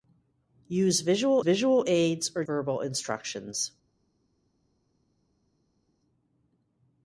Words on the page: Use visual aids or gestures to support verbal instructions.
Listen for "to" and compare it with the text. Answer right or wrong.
wrong